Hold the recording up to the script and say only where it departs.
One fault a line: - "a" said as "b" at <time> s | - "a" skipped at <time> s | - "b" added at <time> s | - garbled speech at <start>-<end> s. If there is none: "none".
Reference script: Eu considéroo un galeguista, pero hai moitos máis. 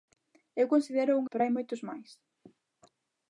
- "galeguista" skipped at 1.3 s